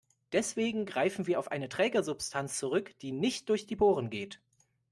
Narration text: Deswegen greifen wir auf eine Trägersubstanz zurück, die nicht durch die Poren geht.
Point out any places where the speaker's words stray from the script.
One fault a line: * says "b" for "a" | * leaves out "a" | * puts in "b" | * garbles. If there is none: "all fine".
all fine